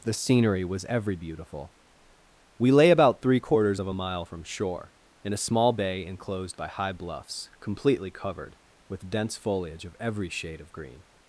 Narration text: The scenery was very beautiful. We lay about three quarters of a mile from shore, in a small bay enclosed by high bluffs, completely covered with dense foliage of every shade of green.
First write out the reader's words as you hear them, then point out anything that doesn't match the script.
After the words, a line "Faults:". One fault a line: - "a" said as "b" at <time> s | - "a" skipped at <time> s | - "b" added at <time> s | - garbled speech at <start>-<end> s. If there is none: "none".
The scenery was every beautiful. We lay about three quarters of a mile from shore, in a small bay enclosed by high bluffs, completely covered with dense foliage of every shade of green.
Faults:
- "very" said as "every" at 0.8 s